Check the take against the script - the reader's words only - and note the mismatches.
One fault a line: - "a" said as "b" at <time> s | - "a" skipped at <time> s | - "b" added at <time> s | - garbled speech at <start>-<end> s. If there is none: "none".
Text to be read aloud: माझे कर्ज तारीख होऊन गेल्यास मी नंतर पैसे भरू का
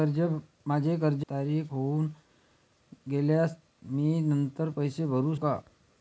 none